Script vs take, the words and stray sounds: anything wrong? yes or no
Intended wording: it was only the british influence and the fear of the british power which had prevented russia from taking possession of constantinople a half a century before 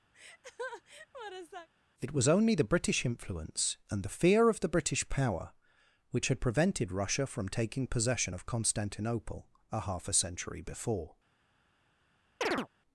yes